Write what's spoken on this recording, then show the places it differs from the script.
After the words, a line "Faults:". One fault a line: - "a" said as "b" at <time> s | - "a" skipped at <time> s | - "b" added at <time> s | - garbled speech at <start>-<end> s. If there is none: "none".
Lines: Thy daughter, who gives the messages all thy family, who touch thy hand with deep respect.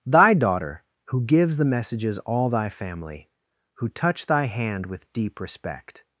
Thy daughter, who gives the messages all thy family, who touch thy hand with deep respect.
Faults:
none